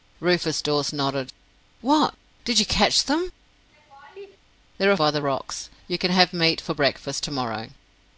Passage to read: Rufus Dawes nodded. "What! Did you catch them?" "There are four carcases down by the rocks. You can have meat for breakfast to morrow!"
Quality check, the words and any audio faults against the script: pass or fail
fail